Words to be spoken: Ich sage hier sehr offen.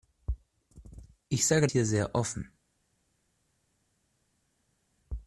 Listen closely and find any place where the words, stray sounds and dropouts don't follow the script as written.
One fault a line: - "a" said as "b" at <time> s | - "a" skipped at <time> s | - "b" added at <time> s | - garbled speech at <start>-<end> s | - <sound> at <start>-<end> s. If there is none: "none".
none